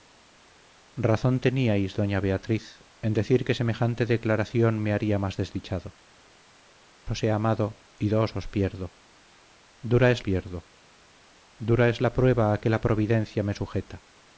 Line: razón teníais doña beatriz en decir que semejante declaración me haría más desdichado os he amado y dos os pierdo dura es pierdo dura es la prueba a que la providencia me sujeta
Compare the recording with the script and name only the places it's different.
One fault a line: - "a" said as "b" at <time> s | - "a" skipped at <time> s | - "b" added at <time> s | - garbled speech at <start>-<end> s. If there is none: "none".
none